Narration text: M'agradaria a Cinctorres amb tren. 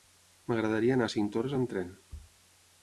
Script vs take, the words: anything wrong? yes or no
yes